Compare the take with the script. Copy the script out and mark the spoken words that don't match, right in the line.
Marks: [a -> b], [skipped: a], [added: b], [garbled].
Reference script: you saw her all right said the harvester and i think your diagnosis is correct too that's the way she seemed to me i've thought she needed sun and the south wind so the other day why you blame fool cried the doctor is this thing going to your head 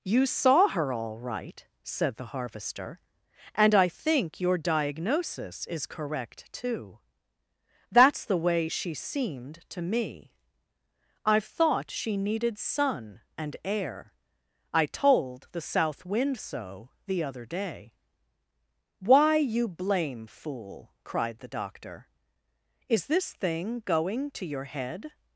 you saw her all right said the harvester and i think your diagnosis is correct too that's the way she seemed to me i've thought she needed sun and [added: air i told] the south wind so the other day why you blame fool cried the doctor is this thing going to your head